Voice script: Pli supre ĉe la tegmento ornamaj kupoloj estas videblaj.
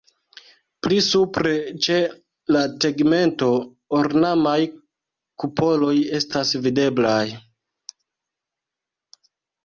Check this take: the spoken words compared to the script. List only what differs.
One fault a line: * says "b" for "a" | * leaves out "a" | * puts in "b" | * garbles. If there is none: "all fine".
all fine